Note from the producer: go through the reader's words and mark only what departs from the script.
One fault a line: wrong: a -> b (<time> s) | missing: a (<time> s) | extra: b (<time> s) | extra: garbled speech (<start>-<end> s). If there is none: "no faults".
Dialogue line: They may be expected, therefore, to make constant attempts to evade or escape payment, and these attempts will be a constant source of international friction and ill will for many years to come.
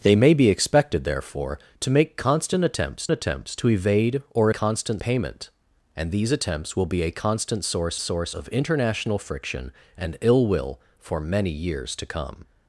extra: attempts (3.1 s)
wrong: escape -> constant (4.5 s)
extra: source (8.0 s)